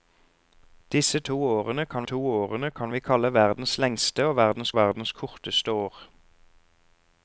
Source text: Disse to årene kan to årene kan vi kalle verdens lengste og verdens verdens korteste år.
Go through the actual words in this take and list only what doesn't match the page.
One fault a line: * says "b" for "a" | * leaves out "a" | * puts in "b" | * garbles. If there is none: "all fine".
all fine